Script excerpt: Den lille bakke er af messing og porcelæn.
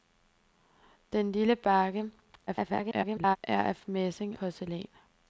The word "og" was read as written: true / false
false